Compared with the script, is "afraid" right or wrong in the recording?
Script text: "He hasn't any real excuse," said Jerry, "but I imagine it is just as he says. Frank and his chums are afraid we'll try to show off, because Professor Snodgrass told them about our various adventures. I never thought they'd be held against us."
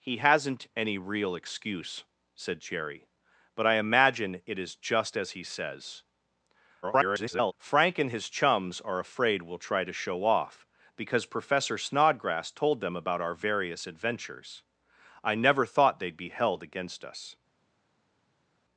right